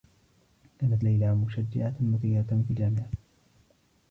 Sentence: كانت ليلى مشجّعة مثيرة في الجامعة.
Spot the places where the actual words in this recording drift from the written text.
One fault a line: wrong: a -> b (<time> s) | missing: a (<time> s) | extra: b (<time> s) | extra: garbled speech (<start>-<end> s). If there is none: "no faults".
no faults